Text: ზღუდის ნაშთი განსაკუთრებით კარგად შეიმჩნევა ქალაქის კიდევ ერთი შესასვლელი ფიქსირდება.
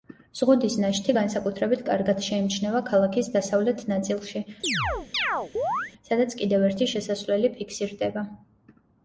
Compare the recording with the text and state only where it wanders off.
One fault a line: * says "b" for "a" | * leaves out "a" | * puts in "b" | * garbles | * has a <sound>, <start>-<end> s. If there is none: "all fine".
* puts in "დასავლეთ ნაწილში სადაც"
* has a chirp, 4.6-5.9 s